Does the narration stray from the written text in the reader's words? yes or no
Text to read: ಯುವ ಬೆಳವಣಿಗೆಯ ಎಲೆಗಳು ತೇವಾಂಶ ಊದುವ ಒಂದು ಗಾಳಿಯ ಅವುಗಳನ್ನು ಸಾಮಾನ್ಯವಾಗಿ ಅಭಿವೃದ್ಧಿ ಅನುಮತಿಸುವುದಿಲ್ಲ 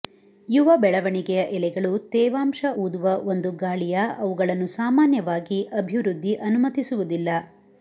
no